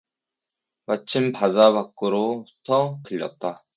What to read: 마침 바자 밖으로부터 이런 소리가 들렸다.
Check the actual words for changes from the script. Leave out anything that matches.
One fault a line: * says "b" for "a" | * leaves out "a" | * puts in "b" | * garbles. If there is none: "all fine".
* leaves out "이런 소리가"